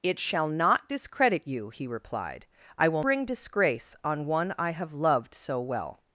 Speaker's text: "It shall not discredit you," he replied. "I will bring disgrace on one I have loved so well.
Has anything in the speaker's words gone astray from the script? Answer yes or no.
no